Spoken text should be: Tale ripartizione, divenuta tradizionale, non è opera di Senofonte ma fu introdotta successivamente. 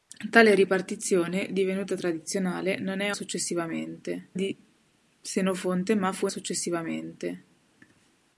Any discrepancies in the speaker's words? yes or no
yes